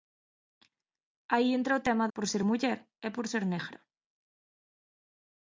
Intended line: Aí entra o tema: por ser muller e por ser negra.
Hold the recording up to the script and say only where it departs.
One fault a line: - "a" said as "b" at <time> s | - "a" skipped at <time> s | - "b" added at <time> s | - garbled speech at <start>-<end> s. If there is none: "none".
none